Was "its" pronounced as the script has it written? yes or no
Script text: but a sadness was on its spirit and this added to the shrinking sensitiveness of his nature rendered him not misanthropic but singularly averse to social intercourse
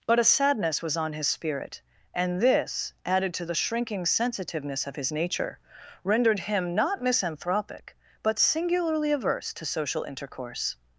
no